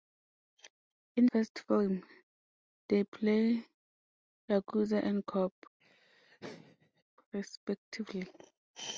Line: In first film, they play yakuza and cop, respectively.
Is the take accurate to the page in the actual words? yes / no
yes